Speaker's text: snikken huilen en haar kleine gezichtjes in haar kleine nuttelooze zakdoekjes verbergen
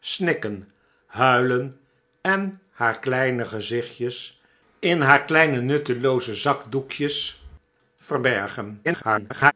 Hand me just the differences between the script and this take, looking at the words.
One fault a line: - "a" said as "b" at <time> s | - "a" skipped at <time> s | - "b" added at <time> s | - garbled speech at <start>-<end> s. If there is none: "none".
- garbled speech at 8.8-9.5 s